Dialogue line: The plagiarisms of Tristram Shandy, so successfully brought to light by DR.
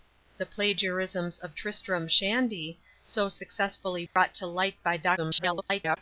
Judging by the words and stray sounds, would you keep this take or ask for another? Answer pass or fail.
fail